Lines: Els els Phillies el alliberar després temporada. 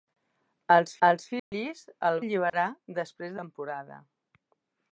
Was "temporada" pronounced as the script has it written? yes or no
yes